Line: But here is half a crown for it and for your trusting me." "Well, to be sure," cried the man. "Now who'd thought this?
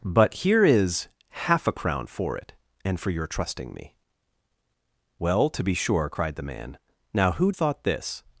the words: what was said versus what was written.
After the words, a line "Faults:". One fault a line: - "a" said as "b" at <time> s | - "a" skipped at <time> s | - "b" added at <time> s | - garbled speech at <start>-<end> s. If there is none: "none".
But here is half a crown for it and for your trusting me." "Well, to be sure," cried the man. "Now who'd thought this?
Faults:
none